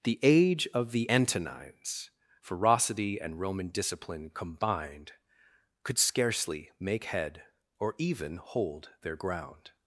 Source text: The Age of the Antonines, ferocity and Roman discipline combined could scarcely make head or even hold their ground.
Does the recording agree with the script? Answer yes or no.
yes